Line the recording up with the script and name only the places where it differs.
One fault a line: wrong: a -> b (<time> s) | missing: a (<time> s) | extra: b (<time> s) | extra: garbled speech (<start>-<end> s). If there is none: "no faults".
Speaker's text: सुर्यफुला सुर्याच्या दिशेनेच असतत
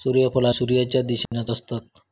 no faults